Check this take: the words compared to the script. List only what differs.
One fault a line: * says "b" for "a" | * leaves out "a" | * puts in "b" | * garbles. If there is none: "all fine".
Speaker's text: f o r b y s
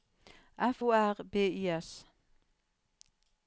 all fine